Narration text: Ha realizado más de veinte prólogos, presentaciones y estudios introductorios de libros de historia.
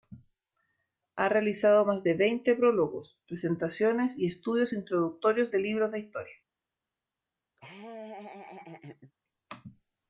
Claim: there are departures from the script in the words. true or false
false